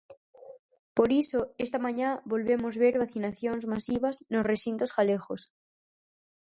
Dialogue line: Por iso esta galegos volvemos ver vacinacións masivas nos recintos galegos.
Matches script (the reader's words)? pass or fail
fail